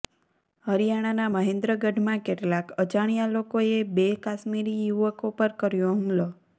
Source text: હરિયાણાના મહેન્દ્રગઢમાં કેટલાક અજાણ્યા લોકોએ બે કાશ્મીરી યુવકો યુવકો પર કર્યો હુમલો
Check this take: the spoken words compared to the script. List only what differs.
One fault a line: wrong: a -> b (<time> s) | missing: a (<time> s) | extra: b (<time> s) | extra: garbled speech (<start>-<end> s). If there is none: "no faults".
missing: યુવકો (5.4 s)